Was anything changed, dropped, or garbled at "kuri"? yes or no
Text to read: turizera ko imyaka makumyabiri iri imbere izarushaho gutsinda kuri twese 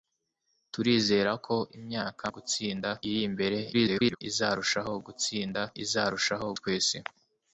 yes